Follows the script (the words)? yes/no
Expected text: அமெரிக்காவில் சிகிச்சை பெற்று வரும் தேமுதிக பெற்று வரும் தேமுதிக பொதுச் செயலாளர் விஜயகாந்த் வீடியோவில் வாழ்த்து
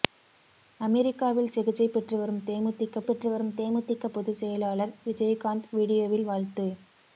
yes